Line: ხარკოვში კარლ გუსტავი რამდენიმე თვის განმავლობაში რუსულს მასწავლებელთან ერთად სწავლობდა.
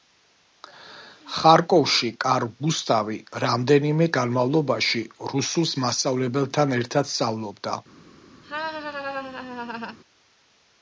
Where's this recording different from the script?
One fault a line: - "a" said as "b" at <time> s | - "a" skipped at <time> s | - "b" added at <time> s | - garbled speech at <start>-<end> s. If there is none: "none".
- "თვის" skipped at 4.1 s